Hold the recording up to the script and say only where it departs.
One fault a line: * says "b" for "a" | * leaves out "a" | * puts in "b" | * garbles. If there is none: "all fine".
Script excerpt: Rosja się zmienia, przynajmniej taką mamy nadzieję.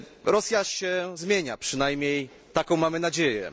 all fine